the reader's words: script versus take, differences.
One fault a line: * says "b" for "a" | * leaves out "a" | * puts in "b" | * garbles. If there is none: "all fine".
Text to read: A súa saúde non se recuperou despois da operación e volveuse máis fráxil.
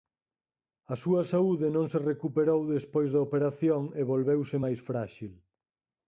all fine